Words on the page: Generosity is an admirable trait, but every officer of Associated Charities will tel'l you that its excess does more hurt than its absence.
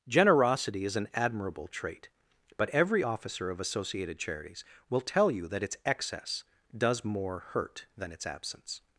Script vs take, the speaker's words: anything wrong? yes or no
no